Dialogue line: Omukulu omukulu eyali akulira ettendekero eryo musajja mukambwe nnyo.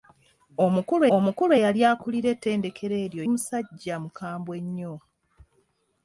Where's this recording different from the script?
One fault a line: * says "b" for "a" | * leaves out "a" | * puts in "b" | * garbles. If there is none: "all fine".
all fine